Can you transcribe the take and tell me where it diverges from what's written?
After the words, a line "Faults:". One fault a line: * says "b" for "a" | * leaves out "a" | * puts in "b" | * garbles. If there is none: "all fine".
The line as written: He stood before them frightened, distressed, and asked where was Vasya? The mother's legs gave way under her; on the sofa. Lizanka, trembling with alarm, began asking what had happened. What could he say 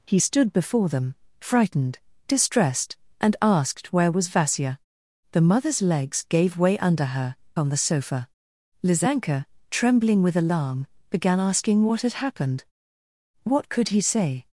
He stood before them frightened, distressed, and asked where was Vasya? The mother's legs gave way under her; on the sofa. Lizanka, trembling with alarm, began asking what had happened. What could he say
Faults:
all fine